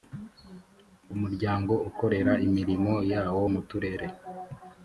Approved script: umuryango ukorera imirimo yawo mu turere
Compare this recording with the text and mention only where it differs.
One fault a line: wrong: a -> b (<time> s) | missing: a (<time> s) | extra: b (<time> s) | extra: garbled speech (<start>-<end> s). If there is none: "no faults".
no faults